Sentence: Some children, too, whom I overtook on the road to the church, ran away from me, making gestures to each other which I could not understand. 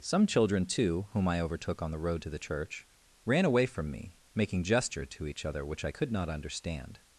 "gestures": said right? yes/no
no